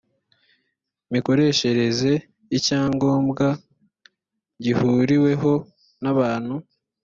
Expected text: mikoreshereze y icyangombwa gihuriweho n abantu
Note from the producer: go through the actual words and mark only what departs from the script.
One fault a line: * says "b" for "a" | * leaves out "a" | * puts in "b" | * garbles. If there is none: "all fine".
all fine